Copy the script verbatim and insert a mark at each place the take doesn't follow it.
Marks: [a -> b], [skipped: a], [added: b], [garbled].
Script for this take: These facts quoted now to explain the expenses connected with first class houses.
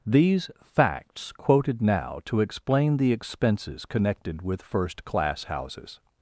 These facts quoted now to explain the expenses connected with first class houses.